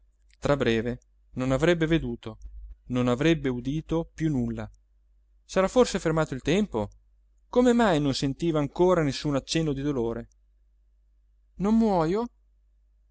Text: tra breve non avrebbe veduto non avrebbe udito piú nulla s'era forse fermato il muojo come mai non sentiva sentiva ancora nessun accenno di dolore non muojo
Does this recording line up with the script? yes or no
no